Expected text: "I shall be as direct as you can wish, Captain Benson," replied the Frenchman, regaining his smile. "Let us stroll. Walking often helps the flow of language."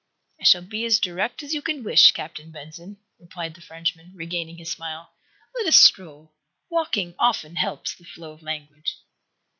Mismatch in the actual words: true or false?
false